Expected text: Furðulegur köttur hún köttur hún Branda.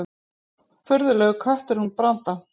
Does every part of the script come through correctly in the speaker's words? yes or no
no